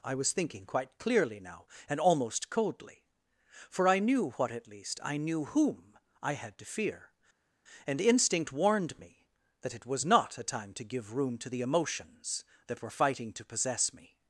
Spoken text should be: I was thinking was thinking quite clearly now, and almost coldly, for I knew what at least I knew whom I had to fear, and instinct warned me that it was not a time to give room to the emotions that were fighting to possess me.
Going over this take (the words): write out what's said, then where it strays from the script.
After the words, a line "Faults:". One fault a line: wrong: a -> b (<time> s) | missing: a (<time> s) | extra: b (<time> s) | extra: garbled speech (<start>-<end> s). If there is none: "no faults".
I was thinking quite clearly now, and almost coldly, for I knew what at least I knew whom I had to fear, and instinct warned me that it was not a time to give room to the emotions that were fighting to possess me.
Faults:
missing: was thinking (0.7 s)